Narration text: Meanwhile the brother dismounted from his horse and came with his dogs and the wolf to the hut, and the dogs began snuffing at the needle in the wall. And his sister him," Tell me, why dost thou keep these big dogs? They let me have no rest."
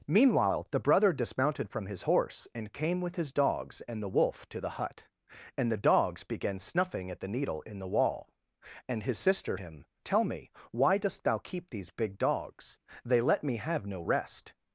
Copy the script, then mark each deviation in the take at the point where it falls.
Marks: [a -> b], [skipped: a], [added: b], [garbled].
Meanwhile the brother dismounted from his horse and came with his dogs and the wolf to the hut, and the dogs began snuffing at the needle in the wall. And his sister him," Tell me, why dost thou keep these big dogs? They let me have no rest."